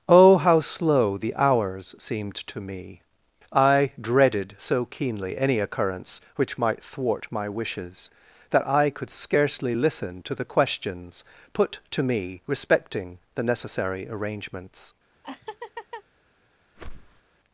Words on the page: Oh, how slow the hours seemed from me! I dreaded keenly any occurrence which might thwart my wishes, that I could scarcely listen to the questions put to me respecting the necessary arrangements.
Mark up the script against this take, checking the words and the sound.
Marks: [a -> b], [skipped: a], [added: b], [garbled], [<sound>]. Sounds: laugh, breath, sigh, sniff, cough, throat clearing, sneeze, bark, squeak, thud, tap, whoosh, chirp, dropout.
Oh, how slow the hours seemed [from -> to] me! I dreaded [added: so] keenly any occurrence which might thwart my wishes, that I could scarcely listen to the questions put to me respecting the necessary arrangements. [laugh] [whoosh]